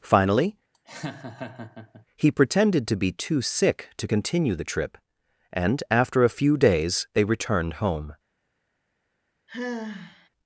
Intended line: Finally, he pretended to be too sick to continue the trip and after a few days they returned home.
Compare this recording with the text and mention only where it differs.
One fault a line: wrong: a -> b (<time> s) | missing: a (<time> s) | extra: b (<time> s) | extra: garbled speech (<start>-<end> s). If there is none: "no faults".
no faults